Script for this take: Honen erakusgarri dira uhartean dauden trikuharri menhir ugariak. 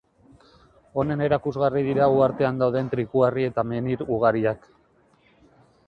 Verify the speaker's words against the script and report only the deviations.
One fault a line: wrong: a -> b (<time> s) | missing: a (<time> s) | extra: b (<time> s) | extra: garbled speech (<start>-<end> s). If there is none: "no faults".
extra: eta (3.5 s)